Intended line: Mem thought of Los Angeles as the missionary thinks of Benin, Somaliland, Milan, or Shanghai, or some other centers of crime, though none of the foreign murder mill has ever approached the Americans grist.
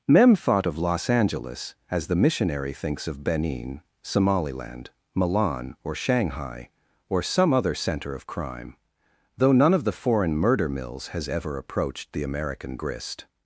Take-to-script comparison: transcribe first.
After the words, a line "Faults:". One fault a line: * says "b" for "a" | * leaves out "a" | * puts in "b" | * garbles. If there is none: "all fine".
Mem thought of Los Angeles as the missionary thinks of Benin, Somaliland, Milan, or Shanghai, or some other center of crime, though none of the foreign murder mills has ever approached the American grist.
Faults:
* says "center" for "centers"
* says "mills" for "mill"
* says "American" for "Americans"